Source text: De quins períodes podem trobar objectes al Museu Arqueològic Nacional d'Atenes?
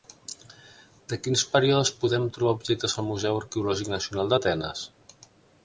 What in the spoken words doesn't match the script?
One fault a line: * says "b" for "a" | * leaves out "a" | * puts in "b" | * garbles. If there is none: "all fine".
all fine